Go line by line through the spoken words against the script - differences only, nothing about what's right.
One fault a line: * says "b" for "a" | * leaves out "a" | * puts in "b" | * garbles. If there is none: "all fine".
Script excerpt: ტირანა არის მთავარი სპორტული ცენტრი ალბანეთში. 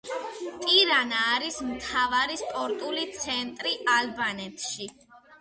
all fine